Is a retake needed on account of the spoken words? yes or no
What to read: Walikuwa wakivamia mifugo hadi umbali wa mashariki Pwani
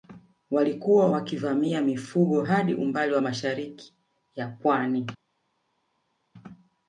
yes